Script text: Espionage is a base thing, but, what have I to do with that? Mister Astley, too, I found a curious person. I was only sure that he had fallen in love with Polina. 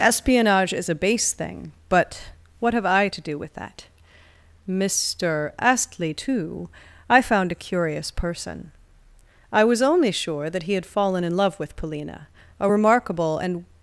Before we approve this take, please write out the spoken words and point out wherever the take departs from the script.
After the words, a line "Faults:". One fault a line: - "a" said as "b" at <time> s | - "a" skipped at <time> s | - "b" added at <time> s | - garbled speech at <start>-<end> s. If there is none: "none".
Espionage is a base thing, but, what have I to do with that? Mister Astley, too, I found a curious person. I was only sure that he had fallen in love with Polina. A remarkable and
Faults:
- "A remarkable and" added at 12.6 s